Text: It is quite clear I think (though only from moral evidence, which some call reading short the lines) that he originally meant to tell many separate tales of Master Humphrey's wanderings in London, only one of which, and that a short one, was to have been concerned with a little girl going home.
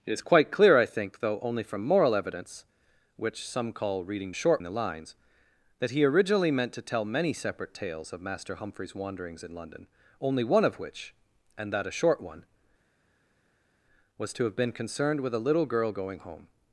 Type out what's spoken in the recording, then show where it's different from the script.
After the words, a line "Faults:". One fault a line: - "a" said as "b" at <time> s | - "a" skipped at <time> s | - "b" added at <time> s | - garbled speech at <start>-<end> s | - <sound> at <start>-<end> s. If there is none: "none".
It is quite clear I think (though only from moral evidence, which some call reading short the lines) that he originally meant to tell many separate tales of Master Humphrey's wanderings in London, only one of which, and that a short one, was to have been concerned with a little girl going home.
Faults:
none